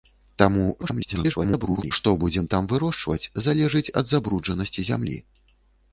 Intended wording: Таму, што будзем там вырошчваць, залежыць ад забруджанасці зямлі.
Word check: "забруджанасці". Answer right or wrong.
right